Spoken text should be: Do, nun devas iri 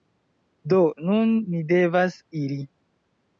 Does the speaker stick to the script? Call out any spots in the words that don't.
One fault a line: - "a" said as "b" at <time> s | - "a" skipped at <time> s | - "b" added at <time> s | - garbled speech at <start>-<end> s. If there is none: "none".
- "ni" added at 1.5 s